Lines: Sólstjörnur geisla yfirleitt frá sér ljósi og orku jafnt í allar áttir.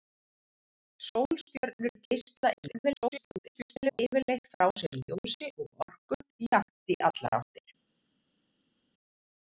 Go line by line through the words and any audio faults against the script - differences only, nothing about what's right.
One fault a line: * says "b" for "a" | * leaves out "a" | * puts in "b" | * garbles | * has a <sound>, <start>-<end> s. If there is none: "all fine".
* garbles